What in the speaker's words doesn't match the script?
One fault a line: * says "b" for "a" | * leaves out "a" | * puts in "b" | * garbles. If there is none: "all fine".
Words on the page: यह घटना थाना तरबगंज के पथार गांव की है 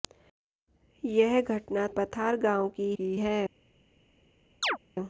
* leaves out "थाना तरबगंज के"
* puts in "की"